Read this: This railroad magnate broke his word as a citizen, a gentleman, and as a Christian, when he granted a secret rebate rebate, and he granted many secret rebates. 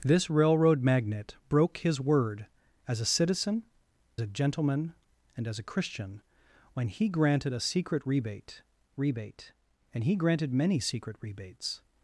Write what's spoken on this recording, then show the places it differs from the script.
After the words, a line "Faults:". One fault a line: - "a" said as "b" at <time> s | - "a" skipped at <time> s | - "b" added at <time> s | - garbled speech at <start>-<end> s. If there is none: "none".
This railroad magnate broke his word as a citizen, a gentleman, and as a Christian, when he granted a secret rebate rebate, and he granted many secret rebates.
Faults:
none